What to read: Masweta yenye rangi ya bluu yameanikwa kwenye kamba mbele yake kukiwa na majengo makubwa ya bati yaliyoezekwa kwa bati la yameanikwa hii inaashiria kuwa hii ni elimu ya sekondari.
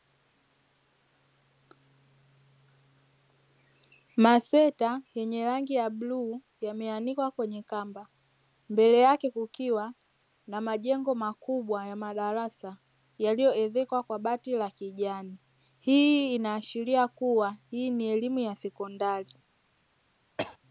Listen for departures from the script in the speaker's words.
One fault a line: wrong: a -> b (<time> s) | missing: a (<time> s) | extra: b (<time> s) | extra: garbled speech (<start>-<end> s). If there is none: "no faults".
wrong: bati -> madarasa (11.9 s)
wrong: yameanikwa -> kijani (14.7 s)